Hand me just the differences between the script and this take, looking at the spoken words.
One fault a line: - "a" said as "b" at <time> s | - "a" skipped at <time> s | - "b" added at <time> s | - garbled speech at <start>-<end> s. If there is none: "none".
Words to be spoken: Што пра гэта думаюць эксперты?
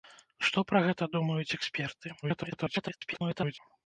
- garbled speech at 2.2-3.6 s